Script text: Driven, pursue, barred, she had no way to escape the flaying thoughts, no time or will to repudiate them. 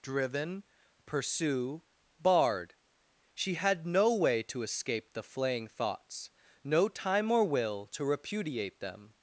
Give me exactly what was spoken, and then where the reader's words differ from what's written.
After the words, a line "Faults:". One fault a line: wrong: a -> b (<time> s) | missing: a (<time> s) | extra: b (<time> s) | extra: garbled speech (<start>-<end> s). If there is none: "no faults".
Driven, pursue, barred, she had no way to escape the flaying thoughts, no time or will to repudiate them.
Faults:
no faults